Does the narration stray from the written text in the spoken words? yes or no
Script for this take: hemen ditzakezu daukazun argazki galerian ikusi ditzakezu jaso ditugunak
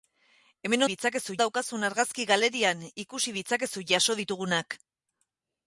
no